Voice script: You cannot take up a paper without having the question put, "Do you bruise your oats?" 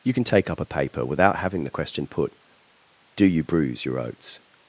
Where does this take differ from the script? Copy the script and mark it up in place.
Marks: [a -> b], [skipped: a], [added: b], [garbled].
You [cannot -> can] take up a paper without having the question put, "Do you bruise your oats?"